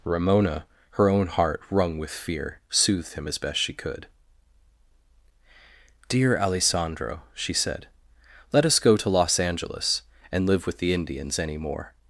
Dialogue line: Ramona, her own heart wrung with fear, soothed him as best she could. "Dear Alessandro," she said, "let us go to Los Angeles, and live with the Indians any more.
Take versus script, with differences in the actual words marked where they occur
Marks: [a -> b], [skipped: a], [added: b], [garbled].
Ramona, her own heart wrung with fear, soothed him as best she could. "Dear Alessandro," she said, "let us go to Los Angeles, and live with the Indians any more.